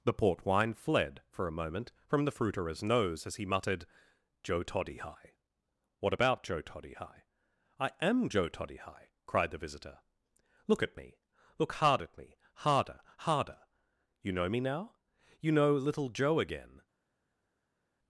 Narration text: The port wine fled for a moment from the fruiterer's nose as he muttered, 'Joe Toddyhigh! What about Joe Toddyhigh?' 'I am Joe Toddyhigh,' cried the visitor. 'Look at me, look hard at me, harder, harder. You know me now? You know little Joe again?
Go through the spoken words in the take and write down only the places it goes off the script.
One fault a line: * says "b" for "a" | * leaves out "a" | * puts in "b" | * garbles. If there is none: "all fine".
all fine